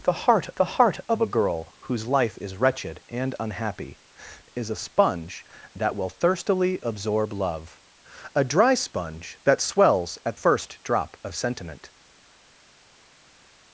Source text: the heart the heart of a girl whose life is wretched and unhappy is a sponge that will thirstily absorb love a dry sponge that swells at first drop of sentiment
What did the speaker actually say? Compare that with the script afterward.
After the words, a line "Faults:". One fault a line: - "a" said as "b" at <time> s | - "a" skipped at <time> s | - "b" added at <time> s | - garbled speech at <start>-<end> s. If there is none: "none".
the heart the heart of a girl whose life is wretched and unhappy is a sponge that will thirstily absorb love a dry sponge that swells at first drop of sentiment
Faults:
none